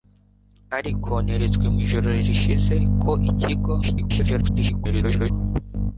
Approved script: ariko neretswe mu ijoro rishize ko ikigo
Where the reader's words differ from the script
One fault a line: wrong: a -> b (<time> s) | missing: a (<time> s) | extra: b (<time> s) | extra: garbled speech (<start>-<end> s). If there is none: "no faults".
extra: garbled speech (3.8-5.3 s)